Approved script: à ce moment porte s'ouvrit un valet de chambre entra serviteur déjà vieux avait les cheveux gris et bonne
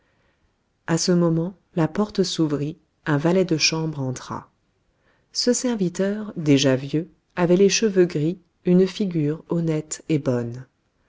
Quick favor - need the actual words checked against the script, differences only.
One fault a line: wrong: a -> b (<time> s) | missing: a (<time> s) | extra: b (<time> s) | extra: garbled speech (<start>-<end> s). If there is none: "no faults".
extra: la (1.8 s)
extra: ce (5.3 s)
extra: une figure honnête (8.6 s)